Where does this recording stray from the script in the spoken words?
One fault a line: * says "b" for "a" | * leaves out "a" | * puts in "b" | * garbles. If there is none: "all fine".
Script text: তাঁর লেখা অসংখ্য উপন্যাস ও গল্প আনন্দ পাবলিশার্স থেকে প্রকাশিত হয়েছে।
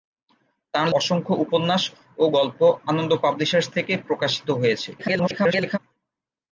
* leaves out "লেখা"
* garbles